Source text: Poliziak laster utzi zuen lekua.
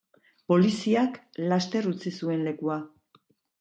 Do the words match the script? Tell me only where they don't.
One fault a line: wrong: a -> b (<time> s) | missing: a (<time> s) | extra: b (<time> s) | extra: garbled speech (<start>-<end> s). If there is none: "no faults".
no faults